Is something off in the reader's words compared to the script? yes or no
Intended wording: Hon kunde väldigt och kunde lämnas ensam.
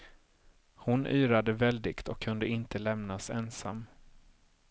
yes